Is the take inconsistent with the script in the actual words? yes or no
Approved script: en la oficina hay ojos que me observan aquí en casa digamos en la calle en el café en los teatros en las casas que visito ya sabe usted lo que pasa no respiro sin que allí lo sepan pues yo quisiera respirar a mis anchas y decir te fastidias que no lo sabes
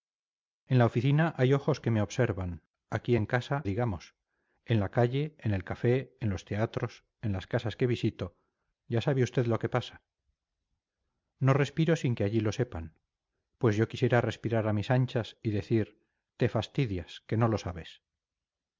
no